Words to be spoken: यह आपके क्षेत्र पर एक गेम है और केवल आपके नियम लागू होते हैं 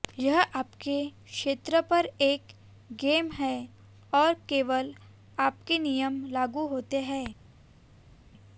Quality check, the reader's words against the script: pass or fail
pass